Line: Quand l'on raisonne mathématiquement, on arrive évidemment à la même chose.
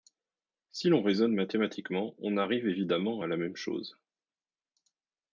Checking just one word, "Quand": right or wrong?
wrong